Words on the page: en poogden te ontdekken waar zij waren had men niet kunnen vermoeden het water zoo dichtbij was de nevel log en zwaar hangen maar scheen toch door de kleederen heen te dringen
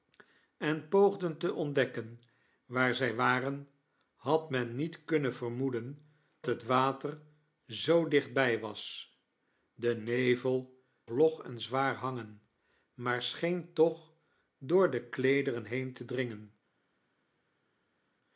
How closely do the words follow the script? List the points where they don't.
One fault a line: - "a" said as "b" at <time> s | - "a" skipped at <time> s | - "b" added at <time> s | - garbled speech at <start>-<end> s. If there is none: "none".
none